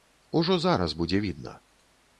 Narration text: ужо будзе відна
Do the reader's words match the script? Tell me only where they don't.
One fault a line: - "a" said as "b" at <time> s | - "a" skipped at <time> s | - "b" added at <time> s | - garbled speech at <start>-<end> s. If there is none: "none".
- "зараз" added at 0.6 s